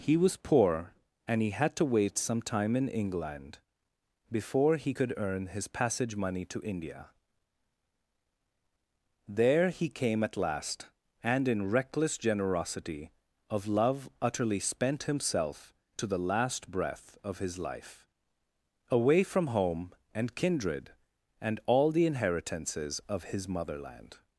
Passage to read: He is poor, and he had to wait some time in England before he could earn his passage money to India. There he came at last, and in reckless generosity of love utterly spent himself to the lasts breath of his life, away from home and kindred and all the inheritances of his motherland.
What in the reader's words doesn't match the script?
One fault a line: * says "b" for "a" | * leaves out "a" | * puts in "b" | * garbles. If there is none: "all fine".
* says "was" for "is"
* says "last" for "lasts"